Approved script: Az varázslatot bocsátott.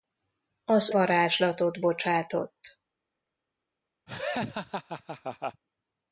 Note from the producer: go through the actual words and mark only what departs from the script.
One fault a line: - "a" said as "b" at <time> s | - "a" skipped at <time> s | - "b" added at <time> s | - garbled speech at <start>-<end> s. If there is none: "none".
none